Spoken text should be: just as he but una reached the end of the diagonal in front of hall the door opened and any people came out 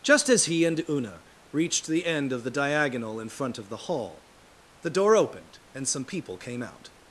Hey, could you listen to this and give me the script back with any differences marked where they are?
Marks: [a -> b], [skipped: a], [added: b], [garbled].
just as he [but -> and] una reached the end of the diagonal in front of [added: the] hall the door opened and [any -> some] people came out